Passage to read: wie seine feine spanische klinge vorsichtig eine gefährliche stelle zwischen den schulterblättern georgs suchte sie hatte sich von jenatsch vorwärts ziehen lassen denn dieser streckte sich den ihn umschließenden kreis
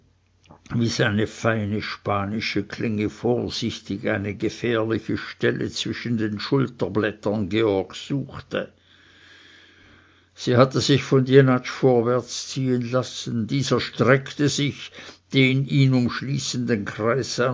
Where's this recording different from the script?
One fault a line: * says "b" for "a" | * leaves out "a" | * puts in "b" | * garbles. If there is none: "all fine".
* leaves out "denn"